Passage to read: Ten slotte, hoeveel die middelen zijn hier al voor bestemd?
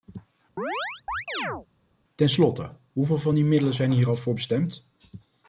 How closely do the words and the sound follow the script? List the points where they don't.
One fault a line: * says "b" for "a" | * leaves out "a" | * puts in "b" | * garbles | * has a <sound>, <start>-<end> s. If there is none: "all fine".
* has a chirp, 0.6-1.7 s
* puts in "van"